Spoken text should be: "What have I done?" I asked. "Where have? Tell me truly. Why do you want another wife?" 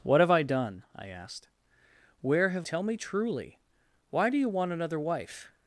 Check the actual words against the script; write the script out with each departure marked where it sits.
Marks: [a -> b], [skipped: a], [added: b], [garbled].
"What have I done?" I asked. "Where have? Tell me truly. Why do you want another wife?"